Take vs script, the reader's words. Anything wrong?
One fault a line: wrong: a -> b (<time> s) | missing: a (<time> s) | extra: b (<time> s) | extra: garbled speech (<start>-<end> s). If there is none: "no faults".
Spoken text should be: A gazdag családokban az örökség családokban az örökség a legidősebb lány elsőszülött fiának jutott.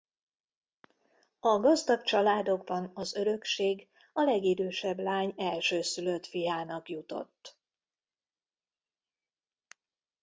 missing: családokban az örökség (3.9 s)